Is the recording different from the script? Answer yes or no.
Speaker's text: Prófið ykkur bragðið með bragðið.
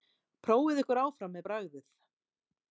yes